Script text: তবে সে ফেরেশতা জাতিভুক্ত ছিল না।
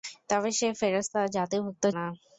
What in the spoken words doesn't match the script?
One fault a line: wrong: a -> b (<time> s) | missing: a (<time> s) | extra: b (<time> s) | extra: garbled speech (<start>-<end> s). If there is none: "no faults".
missing: ছিল (1.8 s)